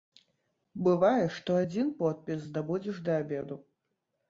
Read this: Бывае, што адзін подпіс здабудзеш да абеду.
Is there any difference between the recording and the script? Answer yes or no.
no